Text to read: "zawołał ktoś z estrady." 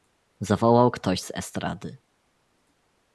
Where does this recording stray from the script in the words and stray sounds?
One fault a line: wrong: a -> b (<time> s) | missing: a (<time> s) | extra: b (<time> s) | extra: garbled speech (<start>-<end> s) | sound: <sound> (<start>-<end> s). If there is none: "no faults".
no faults